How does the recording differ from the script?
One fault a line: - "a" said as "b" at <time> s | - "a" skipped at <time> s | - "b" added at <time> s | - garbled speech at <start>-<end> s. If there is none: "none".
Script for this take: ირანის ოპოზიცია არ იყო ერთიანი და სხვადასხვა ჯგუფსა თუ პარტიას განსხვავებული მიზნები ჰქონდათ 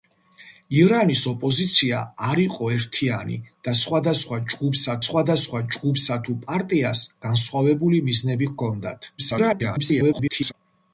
- "სხვადასხვა ჯგუფსა" added at 5.1 s
- garbled speech at 9.2-10.5 s